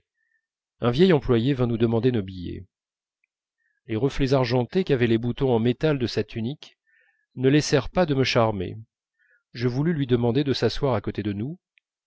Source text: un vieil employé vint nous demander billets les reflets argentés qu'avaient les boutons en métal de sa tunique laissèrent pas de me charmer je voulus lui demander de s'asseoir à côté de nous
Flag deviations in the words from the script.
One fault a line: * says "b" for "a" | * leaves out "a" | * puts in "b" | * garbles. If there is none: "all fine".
* puts in "nos"
* puts in "ne"